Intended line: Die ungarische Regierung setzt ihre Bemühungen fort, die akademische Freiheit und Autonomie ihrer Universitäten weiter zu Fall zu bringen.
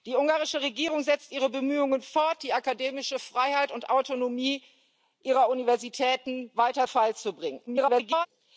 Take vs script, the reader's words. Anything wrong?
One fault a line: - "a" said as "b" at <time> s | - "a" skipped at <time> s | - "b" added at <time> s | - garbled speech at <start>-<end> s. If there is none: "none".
- "zu" skipped at 6.9 s
- garbled speech at 7.7-8.3 s